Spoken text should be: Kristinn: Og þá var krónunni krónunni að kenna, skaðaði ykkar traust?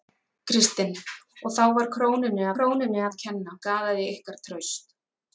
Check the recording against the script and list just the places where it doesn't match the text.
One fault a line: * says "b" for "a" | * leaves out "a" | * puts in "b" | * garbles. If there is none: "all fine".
all fine